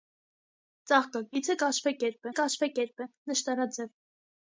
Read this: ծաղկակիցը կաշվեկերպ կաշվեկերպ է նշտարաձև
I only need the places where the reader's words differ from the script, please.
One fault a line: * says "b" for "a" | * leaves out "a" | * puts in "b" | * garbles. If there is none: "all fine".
all fine